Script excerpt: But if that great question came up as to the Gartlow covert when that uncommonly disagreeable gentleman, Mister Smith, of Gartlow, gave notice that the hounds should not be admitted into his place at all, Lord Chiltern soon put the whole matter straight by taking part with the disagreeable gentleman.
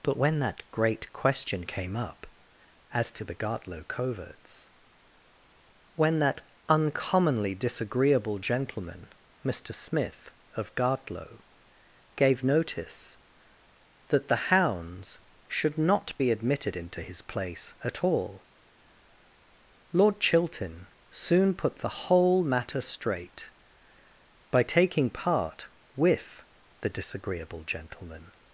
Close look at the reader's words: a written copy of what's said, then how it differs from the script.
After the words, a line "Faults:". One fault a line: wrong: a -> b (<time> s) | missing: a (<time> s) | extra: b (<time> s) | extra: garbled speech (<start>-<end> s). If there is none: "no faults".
But when that great question came up as to the Gartlow coverts when that uncommonly disagreeable gentleman, Mister Smith, of Gartlow, gave notice that the hounds should not be admitted into his place at all, Lord Chiltern soon put the whole matter straight by taking part with the disagreeable gentleman.
Faults:
wrong: if -> when (0.2 s)
wrong: covert -> coverts (3.9 s)